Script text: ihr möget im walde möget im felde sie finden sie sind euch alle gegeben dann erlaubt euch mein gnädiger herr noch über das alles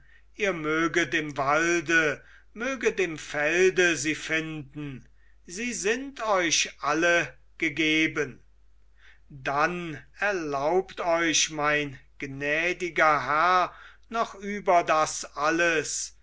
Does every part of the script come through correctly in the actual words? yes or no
yes